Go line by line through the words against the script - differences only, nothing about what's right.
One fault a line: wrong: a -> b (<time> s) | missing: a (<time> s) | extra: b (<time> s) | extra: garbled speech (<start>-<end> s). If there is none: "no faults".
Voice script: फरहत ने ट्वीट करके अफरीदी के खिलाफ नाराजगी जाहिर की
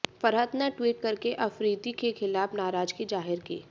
no faults